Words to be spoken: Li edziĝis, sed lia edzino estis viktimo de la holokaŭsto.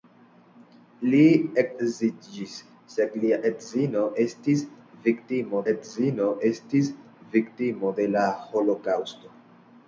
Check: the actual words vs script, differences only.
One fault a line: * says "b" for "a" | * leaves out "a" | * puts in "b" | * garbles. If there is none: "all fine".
* puts in "edzino estis viktimo"